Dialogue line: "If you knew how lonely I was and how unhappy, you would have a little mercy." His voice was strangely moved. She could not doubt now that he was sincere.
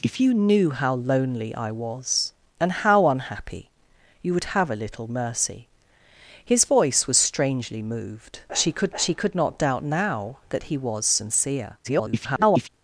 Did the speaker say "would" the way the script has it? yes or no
yes